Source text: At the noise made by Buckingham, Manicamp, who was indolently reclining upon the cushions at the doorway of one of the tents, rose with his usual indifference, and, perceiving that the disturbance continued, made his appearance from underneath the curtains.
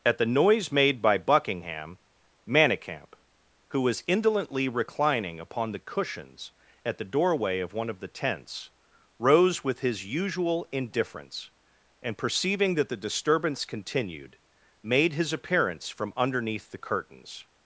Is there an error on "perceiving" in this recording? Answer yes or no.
no